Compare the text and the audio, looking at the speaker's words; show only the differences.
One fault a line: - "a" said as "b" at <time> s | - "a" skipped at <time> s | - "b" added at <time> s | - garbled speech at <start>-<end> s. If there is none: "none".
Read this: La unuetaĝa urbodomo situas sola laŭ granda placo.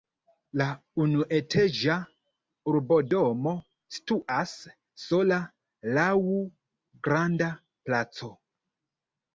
none